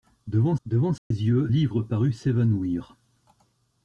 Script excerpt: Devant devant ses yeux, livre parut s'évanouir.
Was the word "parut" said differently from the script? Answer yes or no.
no